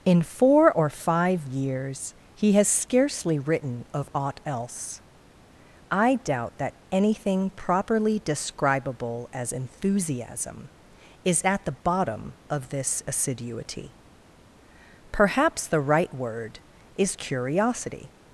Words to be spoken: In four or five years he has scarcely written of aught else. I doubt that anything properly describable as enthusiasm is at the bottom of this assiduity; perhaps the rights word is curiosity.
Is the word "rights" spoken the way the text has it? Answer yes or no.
no